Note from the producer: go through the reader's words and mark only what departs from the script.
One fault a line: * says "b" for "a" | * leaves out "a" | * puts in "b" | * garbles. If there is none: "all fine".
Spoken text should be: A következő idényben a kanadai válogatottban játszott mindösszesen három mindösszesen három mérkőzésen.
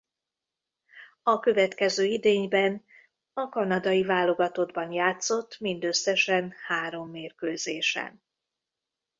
* leaves out "mindösszesen három"